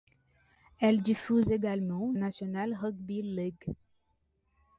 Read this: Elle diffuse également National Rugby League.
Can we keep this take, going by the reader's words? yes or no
yes